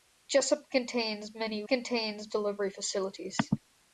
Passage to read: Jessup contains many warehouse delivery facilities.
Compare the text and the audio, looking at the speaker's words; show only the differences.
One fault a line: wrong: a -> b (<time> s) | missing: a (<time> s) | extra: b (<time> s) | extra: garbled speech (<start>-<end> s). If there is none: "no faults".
wrong: warehouse -> contains (1.7 s)